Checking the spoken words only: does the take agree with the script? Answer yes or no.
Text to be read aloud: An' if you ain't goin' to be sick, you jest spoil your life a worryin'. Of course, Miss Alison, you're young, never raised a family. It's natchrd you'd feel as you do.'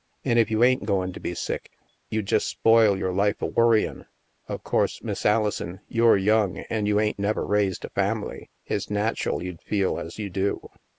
no